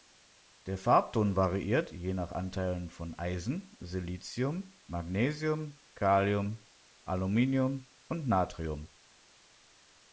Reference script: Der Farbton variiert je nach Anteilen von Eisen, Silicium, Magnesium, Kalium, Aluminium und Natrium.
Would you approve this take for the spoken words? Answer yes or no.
yes